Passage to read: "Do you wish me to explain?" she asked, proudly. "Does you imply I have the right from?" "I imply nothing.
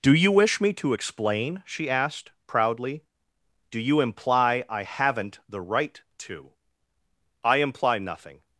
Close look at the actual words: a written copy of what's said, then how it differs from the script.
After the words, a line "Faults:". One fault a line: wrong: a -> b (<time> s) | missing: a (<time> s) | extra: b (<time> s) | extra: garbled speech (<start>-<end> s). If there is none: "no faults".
"Do you wish me to explain?" she asked, proudly. "Do you imply I haven't the right to?" "I imply nothing.
Faults:
wrong: Does -> Do (3.7 s)
wrong: have -> haven't (4.8 s)
wrong: from -> to (6.2 s)